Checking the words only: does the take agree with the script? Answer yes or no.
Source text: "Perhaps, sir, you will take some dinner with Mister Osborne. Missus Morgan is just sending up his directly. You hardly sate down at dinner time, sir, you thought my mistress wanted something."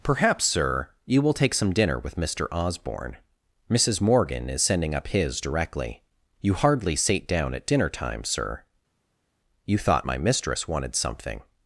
no